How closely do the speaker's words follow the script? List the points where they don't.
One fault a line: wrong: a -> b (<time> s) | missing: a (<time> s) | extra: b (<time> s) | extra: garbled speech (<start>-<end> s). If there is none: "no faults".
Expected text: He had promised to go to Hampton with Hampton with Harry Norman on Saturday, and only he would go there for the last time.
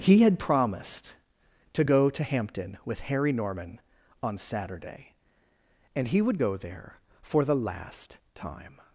missing: Hampton with (3.0 s)
missing: only (6.1 s)